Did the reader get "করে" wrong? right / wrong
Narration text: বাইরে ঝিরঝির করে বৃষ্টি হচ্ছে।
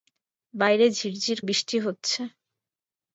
wrong